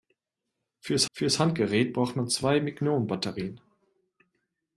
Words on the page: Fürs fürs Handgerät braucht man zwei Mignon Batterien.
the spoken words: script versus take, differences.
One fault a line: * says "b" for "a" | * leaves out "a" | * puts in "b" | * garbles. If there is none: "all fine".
all fine